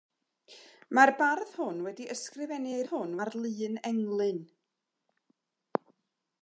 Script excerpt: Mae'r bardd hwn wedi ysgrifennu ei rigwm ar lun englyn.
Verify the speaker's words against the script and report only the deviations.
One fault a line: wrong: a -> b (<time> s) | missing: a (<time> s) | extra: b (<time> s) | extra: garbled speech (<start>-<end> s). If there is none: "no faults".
wrong: rigwm -> hwn (2.9 s)